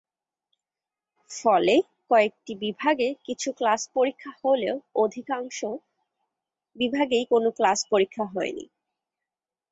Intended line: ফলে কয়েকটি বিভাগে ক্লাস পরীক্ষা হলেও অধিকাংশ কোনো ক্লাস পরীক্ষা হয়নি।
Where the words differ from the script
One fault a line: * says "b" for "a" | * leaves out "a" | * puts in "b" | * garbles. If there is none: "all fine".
* puts in "কিছু"
* puts in "বিভাগেই"